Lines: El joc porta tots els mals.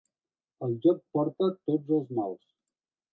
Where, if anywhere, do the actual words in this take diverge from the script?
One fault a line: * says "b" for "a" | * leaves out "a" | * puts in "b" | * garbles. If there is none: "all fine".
all fine